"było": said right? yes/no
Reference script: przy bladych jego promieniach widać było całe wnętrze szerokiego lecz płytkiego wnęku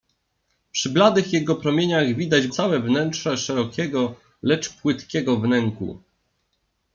no